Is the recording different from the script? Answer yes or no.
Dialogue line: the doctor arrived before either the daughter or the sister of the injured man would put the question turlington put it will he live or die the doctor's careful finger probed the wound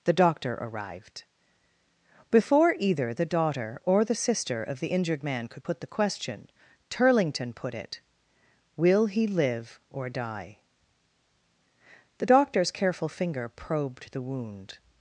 yes